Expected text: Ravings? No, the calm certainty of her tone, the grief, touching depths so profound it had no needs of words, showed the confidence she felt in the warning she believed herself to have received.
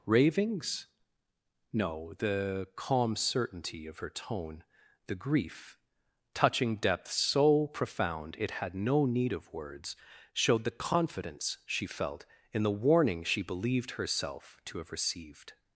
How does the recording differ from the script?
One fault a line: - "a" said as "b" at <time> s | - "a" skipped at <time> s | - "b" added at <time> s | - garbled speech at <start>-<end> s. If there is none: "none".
- "needs" said as "need" at 9.1 s